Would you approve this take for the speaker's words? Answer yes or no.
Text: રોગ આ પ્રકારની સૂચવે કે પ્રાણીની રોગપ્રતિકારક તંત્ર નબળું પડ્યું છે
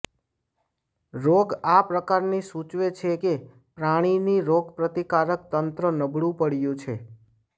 no